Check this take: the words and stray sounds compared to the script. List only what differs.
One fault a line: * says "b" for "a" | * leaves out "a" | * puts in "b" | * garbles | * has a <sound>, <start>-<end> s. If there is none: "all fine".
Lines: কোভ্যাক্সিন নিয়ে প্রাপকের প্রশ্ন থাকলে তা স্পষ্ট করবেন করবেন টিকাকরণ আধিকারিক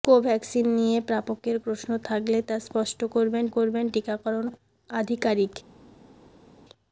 all fine